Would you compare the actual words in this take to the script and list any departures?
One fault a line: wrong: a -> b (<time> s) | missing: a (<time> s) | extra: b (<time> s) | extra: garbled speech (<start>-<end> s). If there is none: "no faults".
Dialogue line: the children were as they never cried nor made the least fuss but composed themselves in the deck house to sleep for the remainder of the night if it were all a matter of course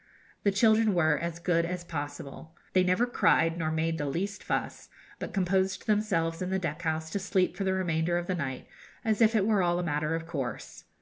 extra: good as possible (1.4 s)
extra: as (9.1 s)